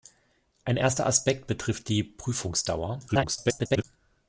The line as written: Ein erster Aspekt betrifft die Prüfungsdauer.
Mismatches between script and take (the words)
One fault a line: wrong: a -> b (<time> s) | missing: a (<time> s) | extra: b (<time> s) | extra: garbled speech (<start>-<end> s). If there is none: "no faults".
extra: garbled speech (3.1-3.8 s)